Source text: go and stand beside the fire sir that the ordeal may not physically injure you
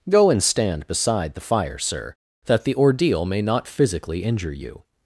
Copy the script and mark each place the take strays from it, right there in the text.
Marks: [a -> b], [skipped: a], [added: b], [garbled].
go and stand beside the fire sir that the ordeal may not physically injure you